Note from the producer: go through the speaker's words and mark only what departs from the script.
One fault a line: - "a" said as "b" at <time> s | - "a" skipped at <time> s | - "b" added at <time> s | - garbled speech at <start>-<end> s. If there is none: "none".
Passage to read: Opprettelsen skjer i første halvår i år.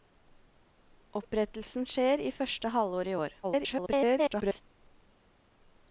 - garbled speech at 3.4-4.6 s